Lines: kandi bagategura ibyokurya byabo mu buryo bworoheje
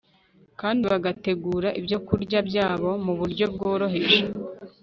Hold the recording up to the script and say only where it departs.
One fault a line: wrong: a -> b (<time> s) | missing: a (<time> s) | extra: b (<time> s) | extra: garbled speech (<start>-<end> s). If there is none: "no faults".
no faults